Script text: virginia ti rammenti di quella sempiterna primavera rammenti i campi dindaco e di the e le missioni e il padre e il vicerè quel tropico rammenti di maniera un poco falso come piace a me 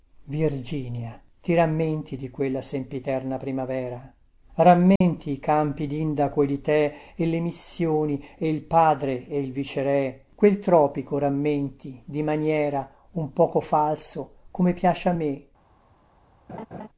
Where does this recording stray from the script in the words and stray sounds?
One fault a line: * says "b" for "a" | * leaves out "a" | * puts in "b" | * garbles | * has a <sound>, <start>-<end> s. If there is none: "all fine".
* has a dropout, 5.0-5.0 s
* has a laugh, 16.5-16.9 s